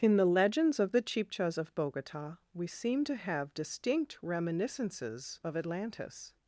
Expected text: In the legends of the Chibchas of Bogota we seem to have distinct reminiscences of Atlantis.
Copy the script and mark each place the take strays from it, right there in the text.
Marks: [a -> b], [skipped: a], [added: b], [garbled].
In the legends of the Chibchas of Bogota we seem to have distinct reminiscences of Atlantis.